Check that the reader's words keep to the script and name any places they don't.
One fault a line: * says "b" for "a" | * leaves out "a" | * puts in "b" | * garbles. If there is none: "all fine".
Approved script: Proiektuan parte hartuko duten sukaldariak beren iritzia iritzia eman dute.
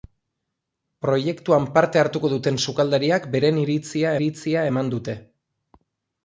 all fine